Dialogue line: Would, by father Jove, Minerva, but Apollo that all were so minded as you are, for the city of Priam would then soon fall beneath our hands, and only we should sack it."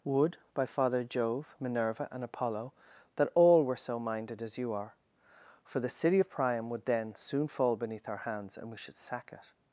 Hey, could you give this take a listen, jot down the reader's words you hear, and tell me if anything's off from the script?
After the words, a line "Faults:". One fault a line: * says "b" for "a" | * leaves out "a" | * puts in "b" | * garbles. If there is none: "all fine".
Would, by father Jove, Minerva, and Apollo that all were so minded as you are, for the city of Priam would then soon fall beneath our hands, and we should sack it."
Faults:
* says "and" for "but"
* leaves out "only"